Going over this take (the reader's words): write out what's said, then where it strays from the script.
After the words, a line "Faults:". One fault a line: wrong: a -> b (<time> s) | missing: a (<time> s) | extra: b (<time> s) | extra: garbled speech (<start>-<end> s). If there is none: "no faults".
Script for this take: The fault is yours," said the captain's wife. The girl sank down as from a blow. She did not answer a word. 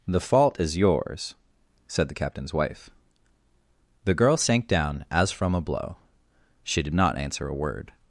The fault is yours," said the captain's wife. The girl sank down as from a blow. She did not answer a word.
Faults:
no faults